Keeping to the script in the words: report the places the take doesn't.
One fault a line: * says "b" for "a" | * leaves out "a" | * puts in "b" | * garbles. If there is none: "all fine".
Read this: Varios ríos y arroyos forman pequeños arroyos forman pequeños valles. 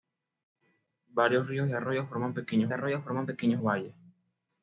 all fine